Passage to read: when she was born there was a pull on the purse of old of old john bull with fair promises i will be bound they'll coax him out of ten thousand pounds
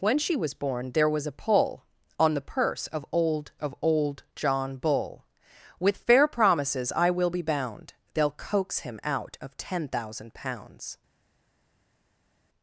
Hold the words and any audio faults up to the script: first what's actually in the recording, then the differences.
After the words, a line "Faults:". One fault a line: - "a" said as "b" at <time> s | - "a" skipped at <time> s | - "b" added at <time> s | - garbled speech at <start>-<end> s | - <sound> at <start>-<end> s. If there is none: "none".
when she was born there was a pull on the purse of old of old john bull with fair promises i will be bound they'll coax him out of ten thousand pounds
Faults:
none